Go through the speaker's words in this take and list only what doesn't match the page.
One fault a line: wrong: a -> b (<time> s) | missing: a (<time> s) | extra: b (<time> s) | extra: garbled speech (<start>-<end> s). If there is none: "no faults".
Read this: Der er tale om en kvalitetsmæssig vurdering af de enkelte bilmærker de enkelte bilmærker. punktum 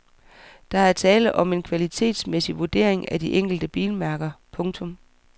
missing: de enkelte bilmærker (4.3 s)